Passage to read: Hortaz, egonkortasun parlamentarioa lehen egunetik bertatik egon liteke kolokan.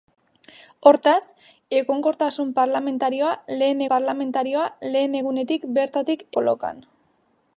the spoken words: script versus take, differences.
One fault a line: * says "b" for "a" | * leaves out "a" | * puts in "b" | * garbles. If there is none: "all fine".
* puts in "parlamentarioa lehen"
* leaves out "egon liteke"